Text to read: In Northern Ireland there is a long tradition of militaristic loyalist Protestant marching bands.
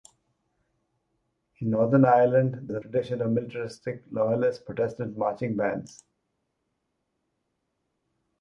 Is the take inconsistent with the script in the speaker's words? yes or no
yes